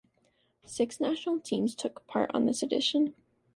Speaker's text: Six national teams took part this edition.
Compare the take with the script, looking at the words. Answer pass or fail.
fail